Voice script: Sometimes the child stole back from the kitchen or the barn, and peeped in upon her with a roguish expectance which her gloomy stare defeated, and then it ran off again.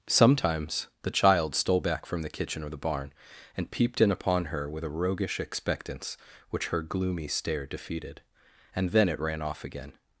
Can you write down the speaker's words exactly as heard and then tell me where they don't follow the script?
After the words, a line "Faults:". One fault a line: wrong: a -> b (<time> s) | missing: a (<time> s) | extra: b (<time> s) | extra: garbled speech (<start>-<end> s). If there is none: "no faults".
Sometimes the child stole back from the kitchen or the barn, and peeped in upon her with a roguish expectance which her gloomy stare defeated, and then it ran off again.
Faults:
no faults